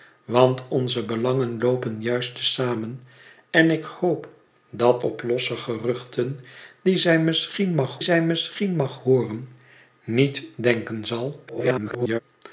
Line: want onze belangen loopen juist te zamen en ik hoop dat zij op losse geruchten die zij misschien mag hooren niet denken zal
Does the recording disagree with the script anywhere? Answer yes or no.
yes